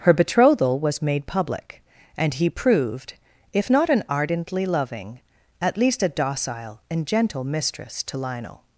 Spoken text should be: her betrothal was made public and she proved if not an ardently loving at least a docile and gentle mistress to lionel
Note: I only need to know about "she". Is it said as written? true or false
false